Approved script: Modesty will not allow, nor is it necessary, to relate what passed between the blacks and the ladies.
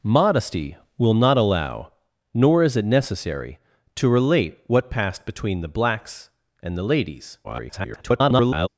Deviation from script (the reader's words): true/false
true